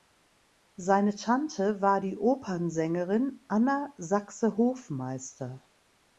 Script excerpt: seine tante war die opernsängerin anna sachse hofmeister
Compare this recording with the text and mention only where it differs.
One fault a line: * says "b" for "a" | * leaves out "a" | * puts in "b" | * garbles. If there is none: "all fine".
all fine